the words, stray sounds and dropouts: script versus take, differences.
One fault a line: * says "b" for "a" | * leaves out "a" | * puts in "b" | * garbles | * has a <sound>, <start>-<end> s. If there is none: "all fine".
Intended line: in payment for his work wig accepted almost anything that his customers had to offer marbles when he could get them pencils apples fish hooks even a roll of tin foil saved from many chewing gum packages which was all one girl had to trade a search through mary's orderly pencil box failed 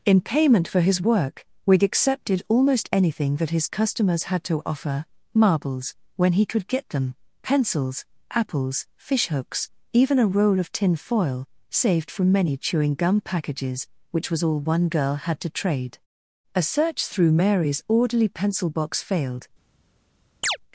* has a chirp, 20.4-20.6 s